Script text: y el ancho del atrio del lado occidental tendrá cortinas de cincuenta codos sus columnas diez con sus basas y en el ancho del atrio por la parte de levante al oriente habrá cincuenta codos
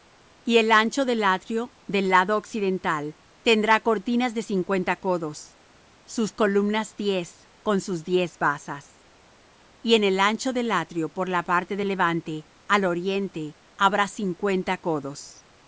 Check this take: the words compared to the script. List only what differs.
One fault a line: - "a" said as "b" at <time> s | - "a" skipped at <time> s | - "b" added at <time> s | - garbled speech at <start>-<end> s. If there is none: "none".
- "diez" added at 8.0 s